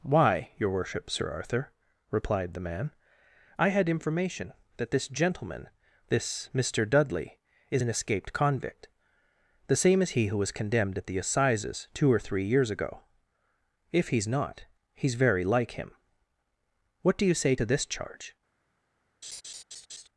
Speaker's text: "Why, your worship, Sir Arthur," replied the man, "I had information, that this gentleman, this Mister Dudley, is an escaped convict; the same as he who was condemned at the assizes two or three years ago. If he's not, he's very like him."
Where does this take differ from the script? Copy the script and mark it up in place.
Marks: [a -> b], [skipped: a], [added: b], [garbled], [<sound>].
"Why, your worship, Sir Arthur," replied the man, "I had information, that this gentleman, this Mister Dudley, is an escaped convict; the same as he who was condemned at the assizes two or three years ago. If he's not, he's very like him." [added: What do you say to this charge] [laugh]